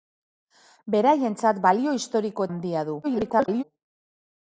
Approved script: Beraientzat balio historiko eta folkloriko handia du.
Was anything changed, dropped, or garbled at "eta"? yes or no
yes